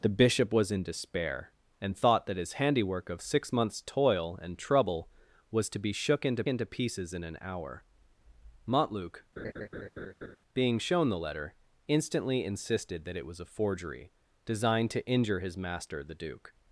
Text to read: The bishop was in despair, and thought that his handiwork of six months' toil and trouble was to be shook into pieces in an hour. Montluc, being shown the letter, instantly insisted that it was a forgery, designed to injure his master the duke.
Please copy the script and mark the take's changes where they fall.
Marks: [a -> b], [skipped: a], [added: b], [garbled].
The bishop was in despair, and thought that his handiwork of six months' toil and trouble was to be shook into [added: into] pieces in an hour. Montluc, being shown the letter, instantly insisted that it was a forgery, designed to injure his master the duke.